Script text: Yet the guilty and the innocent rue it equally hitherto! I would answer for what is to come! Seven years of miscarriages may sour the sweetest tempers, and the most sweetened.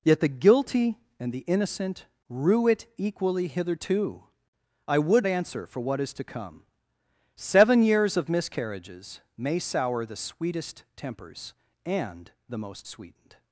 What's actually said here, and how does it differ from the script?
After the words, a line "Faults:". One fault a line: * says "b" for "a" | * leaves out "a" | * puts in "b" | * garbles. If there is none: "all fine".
Yet the guilty and the innocent rue it equally hitherto! I would answer for what is to come! Seven years of miscarriages may sour the sweetest tempers, and the most sweetened.
Faults:
all fine